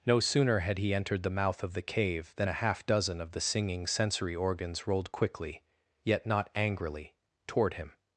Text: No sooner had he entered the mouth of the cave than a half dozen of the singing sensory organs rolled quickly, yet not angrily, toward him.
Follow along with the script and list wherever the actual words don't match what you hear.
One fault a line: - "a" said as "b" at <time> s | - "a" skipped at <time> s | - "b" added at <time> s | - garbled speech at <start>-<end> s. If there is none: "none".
none